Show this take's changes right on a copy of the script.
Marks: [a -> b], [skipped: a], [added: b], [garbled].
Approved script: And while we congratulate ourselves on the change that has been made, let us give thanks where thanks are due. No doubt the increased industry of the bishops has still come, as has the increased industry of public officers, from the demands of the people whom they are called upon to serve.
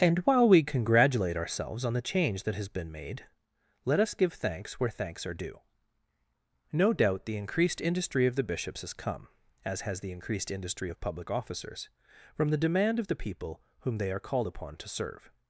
And while we congratulate ourselves on the change that has been made, let us give thanks where thanks are due. No doubt the increased industry of the bishops has [skipped: still] come, as has the increased industry of public officers, from the [demands -> demand] of the people whom they are called upon to serve.